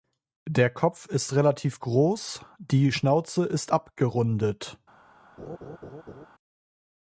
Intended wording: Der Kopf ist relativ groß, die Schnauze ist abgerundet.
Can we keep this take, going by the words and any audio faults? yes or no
no